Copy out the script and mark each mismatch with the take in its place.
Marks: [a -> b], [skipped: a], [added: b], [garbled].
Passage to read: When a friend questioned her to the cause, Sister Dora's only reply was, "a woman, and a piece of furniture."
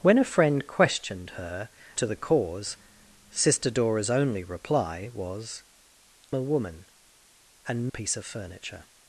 When a friend questioned her to the cause, Sister Dora's only reply was, "a woman, and a piece of furniture."